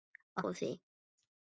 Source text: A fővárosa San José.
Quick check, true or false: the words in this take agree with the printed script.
false